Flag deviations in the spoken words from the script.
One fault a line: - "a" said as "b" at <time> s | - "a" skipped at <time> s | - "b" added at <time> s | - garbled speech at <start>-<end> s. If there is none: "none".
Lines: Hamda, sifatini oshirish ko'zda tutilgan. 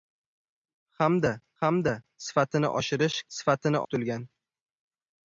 - "hamda" added at 1.6 s
- "ko'zda" said as "sifatini" at 3.4 s